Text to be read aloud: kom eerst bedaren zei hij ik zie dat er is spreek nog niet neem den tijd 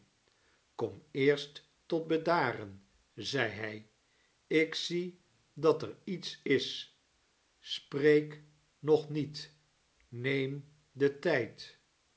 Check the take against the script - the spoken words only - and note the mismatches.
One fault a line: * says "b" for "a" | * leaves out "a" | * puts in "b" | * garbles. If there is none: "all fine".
* puts in "tot"
* puts in "iets"